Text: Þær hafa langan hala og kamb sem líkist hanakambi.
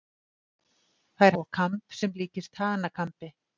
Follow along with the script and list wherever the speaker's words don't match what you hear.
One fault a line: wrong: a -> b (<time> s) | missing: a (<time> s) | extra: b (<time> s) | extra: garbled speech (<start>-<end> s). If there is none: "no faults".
missing: hafa langan hala (1.4 s)